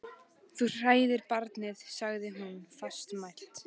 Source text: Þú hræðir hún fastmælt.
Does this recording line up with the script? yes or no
no